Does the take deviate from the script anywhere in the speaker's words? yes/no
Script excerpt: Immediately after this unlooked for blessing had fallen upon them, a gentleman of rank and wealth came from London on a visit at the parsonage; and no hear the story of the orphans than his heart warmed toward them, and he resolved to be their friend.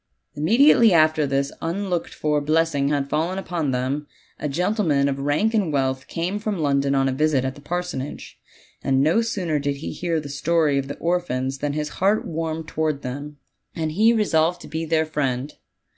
yes